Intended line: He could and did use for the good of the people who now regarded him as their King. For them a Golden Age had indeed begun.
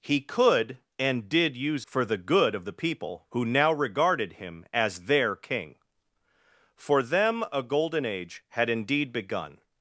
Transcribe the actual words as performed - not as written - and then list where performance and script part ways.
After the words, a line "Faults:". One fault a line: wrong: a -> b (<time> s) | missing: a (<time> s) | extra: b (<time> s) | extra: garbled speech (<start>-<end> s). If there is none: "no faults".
He could and did use for the good of the people who now regarded him as their King. For them a Golden Age had indeed begun.
Faults:
no faults